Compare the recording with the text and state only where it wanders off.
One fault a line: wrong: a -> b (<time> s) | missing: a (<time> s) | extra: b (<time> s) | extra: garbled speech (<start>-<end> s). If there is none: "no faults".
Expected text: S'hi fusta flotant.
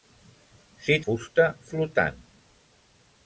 no faults